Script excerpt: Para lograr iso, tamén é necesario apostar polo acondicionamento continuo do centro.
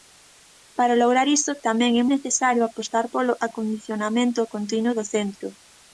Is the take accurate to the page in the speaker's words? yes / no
yes